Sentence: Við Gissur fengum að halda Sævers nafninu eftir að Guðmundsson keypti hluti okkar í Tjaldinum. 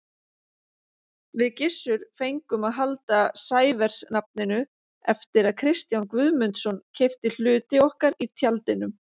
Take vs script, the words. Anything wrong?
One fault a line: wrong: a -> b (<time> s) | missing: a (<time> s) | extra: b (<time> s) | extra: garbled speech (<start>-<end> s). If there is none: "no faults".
extra: Kristján (5.6 s)